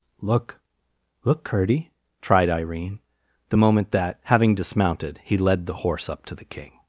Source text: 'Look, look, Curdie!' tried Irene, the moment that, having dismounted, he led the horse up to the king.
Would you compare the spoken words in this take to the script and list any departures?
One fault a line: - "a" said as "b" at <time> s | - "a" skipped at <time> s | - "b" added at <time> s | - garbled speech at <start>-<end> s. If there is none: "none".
none